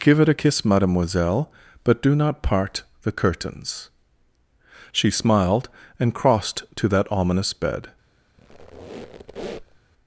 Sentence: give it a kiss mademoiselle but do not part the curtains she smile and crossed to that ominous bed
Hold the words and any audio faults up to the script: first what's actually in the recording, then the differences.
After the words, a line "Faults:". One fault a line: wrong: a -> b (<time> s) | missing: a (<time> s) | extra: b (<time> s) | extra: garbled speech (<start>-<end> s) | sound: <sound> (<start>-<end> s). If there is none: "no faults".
give it a kiss mademoiselle but do not part the curtains she smiled and crossed to that ominous bed
Faults:
wrong: smile -> smiled (5.1 s)
sound: squeak (8.4-9.8 s)